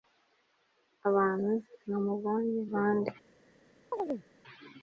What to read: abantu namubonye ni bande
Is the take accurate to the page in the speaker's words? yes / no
no